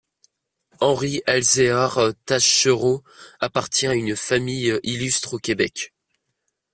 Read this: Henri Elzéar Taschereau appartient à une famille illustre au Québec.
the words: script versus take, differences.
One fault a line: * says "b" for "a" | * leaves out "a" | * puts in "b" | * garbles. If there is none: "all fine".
all fine